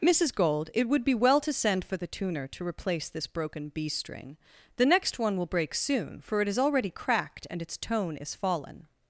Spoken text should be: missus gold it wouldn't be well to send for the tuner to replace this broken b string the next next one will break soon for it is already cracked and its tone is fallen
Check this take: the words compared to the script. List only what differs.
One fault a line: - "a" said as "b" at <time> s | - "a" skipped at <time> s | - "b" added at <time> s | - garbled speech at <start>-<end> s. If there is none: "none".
- "wouldn't" said as "would" at 0.9 s
- "next" skipped at 5.2 s